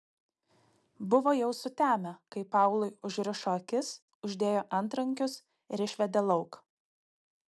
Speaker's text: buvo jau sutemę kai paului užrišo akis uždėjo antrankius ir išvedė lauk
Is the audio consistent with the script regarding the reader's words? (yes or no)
yes